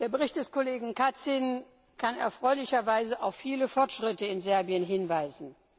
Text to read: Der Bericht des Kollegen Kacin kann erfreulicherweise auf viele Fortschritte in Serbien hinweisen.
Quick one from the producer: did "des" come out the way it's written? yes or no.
yes